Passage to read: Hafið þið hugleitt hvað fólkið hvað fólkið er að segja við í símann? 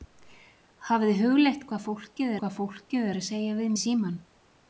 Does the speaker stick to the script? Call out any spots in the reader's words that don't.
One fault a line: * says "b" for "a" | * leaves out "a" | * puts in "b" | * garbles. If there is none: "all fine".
all fine